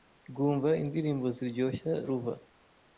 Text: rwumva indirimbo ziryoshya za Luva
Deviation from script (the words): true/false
true